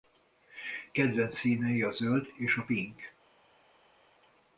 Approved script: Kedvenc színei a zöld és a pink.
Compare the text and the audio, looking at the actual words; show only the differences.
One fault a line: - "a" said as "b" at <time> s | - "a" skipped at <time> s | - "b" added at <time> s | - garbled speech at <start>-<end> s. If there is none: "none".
none